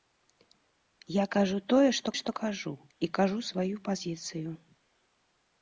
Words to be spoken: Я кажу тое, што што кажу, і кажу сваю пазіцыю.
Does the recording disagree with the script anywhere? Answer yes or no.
no